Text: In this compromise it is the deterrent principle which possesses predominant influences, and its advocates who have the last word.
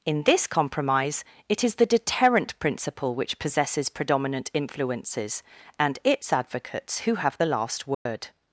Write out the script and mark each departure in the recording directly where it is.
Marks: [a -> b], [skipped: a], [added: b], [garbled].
In this compromise it is the deterrent principle which possesses predominant influences, and its advocates who have the last word.